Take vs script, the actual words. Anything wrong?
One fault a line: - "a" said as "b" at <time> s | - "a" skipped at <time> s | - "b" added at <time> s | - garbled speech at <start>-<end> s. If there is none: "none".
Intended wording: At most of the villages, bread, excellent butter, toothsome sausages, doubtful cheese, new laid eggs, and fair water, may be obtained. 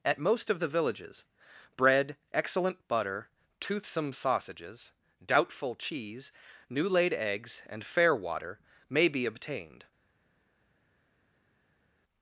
none